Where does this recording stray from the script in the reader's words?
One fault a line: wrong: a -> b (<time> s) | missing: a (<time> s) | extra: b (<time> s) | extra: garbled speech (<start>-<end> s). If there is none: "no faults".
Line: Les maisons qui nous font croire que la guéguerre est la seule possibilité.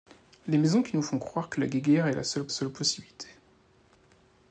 extra: seule (2.5 s)